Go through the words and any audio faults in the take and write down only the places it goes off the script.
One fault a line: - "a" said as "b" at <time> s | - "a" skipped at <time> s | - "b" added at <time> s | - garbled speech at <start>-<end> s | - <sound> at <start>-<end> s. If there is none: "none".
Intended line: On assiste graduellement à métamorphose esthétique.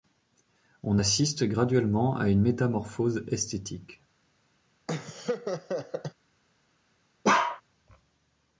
- "une" added at 2.3 s
- laugh at 4.9-6.1 s
- bark at 7.2-7.6 s